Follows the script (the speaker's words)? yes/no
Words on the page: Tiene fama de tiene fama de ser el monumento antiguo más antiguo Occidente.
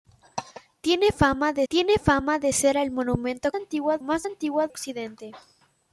yes